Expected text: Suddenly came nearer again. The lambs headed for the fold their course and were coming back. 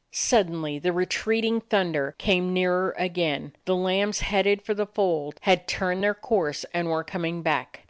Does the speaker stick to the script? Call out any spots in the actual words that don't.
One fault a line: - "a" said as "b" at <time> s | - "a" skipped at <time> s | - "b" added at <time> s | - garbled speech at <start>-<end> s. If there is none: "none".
- "the retreating thunder" added at 0.8 s
- "had turned" added at 5.4 s